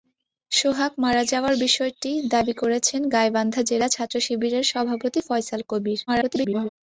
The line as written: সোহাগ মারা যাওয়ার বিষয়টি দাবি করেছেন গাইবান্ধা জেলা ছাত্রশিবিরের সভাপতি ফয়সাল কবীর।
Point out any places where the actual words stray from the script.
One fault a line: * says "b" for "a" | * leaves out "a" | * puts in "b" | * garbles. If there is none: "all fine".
* garbles